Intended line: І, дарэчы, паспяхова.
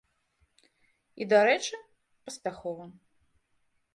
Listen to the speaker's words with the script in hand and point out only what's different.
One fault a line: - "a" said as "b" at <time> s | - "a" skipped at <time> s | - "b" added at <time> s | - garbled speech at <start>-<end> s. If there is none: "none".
none